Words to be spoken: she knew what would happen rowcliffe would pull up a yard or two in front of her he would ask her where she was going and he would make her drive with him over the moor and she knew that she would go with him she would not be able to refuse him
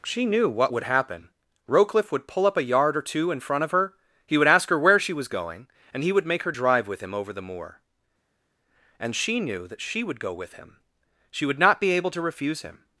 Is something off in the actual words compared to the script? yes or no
no